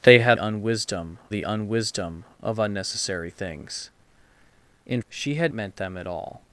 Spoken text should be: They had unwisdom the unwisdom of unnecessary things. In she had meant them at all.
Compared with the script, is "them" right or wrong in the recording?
right